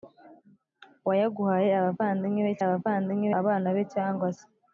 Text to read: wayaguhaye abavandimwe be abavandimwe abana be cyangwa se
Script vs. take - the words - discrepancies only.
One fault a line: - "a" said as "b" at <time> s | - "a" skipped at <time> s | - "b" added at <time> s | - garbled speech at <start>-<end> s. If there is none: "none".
none